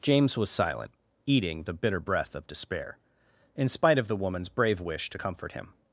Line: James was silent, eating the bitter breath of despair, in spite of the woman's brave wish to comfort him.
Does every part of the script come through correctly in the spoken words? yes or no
yes